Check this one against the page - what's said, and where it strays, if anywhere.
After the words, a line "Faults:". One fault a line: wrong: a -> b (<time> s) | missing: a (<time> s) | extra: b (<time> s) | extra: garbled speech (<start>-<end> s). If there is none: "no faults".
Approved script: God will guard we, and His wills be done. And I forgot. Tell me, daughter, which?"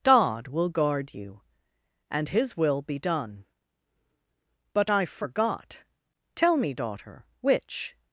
God will guard you, and His will be done. But I forgot. Tell me, daughter, which?"
Faults:
wrong: we -> you (1.1 s)
wrong: wills -> will (2.6 s)
wrong: And -> But (4.7 s)